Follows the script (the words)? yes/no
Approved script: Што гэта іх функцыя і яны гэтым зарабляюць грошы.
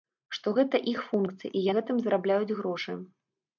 no